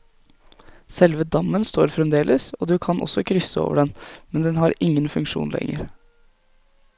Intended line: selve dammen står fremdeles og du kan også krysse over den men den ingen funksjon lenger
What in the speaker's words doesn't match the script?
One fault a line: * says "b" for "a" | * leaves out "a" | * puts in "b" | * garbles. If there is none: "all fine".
* puts in "har"